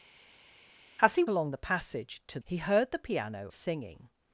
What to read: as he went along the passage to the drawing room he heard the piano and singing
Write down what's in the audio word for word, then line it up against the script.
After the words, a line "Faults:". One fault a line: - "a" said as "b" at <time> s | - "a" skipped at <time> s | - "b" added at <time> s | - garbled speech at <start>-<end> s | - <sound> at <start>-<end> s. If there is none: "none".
as he along the passage to he heard the piano singing
Faults:
- "went" skipped at 1.2 s
- "the drawing room" skipped at 2.4 s
- "and" skipped at 3.5 s